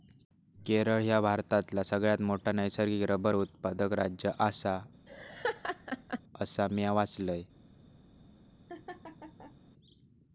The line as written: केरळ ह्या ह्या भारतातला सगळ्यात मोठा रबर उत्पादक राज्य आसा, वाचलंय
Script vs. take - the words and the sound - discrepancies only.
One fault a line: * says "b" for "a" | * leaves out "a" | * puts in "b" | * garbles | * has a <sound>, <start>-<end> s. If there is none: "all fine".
* leaves out "ह्या"
* puts in "नैसर्गिक"
* has a laugh, 5.1-6.2 s
* puts in "असा म्या"
* has a laugh, 8.7-9.6 s